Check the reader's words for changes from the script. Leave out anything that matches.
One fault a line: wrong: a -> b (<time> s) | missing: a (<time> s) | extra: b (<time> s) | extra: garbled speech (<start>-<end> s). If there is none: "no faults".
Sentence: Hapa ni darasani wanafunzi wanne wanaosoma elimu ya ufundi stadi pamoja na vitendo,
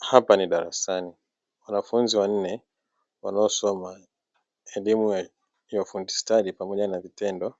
no faults